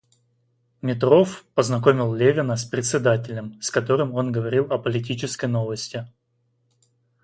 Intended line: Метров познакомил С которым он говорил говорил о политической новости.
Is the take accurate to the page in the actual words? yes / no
no